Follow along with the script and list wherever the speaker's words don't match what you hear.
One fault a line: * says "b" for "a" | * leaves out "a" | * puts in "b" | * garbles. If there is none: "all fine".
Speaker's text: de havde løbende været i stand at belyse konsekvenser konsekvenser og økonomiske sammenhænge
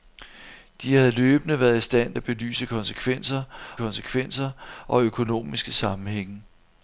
all fine